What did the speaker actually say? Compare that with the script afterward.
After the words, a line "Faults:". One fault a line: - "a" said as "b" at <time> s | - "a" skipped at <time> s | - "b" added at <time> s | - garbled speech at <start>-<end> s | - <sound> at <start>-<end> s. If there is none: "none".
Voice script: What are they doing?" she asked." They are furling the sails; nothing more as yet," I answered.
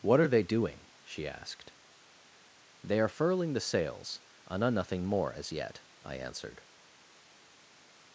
What are they doing?" she asked." They are furling the sails; and are nothing more as yet," I answered.
Faults:
- "and are" added at 4.5 s